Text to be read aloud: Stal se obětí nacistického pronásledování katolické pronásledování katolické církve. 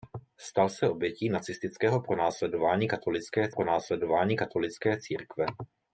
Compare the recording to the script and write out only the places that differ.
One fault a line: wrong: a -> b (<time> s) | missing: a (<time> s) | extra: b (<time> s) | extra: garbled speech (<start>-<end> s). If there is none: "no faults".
no faults